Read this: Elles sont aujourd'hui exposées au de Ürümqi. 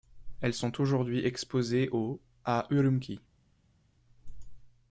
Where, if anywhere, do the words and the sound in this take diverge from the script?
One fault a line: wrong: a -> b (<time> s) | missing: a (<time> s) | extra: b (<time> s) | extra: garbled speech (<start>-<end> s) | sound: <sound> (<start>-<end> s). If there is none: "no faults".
wrong: de -> à (2.5 s)